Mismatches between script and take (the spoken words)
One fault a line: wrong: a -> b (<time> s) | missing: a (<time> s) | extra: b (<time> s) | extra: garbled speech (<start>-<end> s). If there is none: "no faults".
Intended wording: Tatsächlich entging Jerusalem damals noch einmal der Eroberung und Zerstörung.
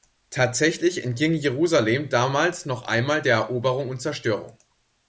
no faults